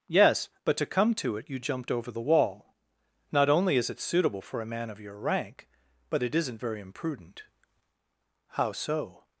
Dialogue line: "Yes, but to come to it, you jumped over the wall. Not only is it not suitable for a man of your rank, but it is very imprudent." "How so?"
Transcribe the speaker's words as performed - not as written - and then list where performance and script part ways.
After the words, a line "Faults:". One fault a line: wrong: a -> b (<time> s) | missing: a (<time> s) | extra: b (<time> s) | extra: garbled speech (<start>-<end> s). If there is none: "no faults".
"Yes, but to come to it, you jumped over the wall. Not only is it suitable for a man of your rank, but it isn't very imprudent." "How so?"
Faults:
missing: not (4.0 s)
wrong: is -> isn't (6.3 s)